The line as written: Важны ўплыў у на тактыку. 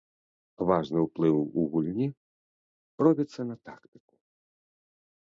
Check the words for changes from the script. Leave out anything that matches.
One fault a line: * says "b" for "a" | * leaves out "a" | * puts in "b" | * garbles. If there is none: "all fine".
* puts in "гульні робіцца"